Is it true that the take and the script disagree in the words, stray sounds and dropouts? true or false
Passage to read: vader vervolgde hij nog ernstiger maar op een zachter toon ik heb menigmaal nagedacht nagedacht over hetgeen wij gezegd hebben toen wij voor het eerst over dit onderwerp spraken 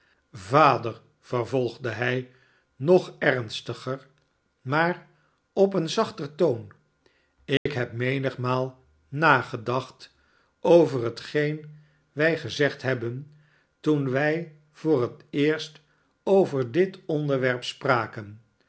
true